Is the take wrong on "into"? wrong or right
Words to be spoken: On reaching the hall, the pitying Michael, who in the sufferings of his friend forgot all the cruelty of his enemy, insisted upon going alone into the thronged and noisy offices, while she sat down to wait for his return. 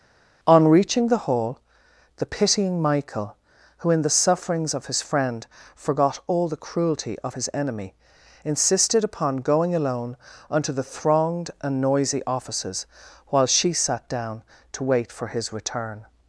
wrong